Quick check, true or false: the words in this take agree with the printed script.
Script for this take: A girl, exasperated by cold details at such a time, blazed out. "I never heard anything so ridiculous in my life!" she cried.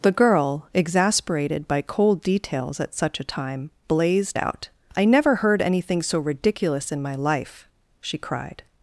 false